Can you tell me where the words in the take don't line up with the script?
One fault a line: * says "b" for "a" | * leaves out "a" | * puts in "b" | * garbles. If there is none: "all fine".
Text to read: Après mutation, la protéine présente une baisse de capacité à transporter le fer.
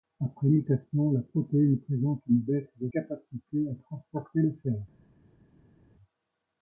all fine